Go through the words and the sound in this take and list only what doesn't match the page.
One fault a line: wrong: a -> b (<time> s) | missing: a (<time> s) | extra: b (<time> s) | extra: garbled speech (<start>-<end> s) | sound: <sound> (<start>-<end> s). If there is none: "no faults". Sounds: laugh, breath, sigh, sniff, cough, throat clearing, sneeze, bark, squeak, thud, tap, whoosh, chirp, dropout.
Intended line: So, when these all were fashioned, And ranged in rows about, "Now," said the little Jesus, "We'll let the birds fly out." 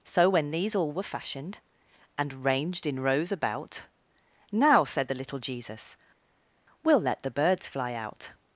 no faults